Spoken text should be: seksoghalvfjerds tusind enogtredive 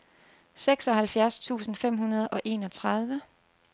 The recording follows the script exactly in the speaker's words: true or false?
false